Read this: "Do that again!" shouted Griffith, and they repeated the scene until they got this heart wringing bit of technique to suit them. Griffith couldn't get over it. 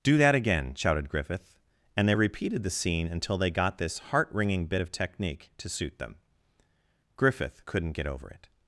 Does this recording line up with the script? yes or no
yes